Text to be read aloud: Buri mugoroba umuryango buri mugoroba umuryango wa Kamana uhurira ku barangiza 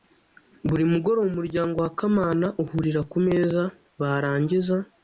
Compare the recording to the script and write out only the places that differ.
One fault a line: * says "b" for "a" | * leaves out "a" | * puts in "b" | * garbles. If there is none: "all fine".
* leaves out "buri mugoroba umuryango"
* puts in "meza"